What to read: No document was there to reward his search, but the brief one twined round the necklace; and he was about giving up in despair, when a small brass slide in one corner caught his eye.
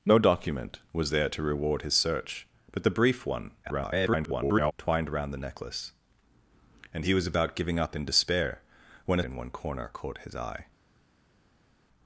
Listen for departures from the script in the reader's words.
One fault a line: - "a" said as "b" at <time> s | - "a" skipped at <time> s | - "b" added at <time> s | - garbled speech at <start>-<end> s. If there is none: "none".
- garbled speech at 3.6-4.7 s
- "small brass slide" skipped at 9.2 s